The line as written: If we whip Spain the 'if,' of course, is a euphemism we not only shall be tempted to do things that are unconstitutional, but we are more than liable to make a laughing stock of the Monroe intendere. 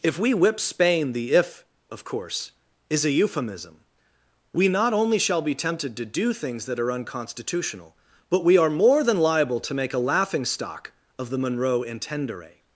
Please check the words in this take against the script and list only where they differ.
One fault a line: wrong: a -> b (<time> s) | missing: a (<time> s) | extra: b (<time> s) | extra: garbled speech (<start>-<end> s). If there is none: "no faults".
no faults